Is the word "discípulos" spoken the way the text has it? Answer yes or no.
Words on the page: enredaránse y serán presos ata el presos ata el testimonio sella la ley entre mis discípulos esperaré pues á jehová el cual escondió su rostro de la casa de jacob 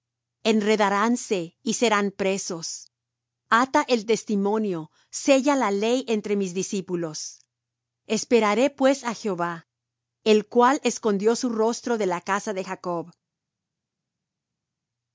yes